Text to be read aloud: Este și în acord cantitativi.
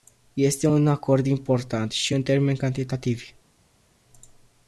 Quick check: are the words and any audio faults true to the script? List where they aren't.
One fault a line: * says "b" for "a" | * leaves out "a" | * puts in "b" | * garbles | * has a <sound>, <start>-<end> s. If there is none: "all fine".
* puts in "un acord important"
* says "termeni" for "acord"